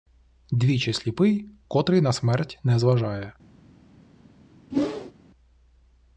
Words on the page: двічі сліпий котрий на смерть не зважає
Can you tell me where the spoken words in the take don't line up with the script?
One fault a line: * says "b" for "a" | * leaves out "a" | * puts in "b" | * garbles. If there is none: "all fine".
all fine